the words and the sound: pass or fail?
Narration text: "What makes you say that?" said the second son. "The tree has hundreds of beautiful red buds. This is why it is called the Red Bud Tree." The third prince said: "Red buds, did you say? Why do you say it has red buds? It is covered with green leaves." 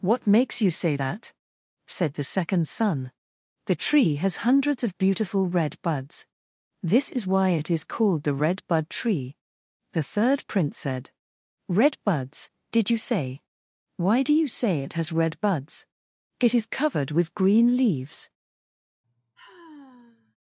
fail